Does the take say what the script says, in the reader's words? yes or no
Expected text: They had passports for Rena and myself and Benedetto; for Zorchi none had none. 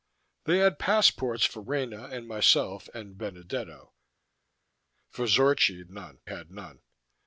yes